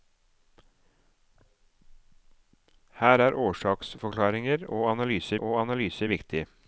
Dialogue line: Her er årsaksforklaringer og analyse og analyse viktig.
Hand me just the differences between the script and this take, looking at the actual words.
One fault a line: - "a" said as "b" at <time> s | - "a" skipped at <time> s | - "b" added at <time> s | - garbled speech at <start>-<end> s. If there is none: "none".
none